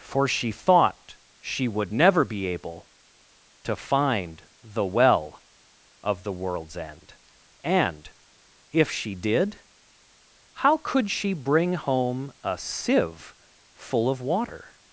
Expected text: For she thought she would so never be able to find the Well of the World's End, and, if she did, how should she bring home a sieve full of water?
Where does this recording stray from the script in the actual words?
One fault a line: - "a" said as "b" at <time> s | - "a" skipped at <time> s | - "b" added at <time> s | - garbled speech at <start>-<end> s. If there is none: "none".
- "so" skipped at 1.9 s
- "should" said as "could" at 10.8 s